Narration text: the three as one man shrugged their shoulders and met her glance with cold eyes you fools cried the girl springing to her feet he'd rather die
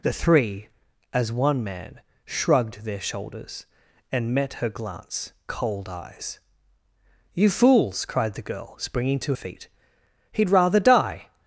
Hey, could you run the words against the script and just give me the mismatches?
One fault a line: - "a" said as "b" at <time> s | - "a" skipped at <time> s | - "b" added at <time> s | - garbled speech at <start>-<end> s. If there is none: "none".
- "with" skipped at 5.3 s
- "her" skipped at 9.3 s